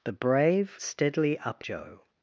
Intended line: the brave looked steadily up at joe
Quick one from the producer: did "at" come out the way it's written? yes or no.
no